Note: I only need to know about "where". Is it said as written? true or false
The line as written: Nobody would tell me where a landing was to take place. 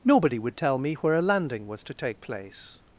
true